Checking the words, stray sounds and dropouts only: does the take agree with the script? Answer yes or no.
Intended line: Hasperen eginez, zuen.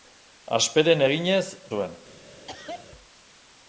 no